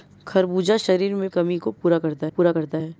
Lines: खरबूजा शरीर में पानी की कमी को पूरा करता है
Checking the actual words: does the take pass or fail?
fail